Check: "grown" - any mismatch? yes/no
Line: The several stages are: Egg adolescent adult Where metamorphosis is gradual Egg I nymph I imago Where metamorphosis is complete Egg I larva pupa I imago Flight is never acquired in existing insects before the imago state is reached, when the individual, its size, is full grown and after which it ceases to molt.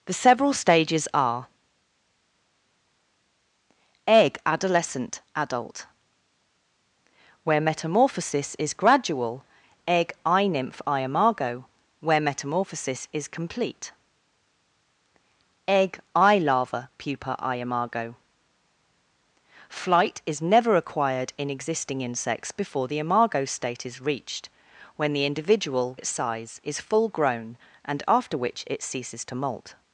no